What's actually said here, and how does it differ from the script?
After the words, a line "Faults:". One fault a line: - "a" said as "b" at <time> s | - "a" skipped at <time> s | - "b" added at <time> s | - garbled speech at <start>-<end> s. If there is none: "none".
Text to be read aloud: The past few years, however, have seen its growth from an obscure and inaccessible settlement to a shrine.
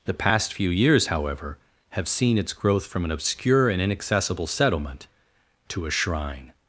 The past few years, however, have seen its growth from an obscure and inaccessible settlement to a shrine.
Faults:
none